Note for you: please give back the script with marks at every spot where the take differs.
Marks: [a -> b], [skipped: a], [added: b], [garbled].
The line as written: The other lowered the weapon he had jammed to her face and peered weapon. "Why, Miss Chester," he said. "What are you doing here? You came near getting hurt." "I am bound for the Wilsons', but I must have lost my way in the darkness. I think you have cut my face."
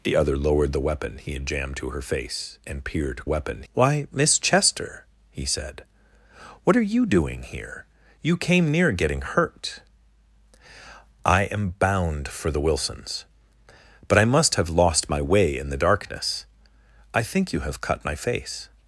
The other lowered the weapon he had jammed to her face and peered weapon. "Why, Miss Chester," he said. "What are you doing here? You came near getting hurt." "I am bound for the Wilsons', but I must have lost my way in the darkness. I think you have cut my face."